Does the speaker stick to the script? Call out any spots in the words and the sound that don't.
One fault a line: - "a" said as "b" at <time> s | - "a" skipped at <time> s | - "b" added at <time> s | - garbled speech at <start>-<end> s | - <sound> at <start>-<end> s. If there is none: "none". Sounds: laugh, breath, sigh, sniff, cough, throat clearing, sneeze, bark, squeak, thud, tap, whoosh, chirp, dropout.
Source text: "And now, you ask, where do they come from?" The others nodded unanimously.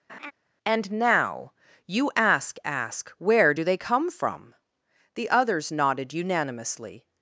- laugh at 0.1-0.3 s
- "ask" added at 2.7 s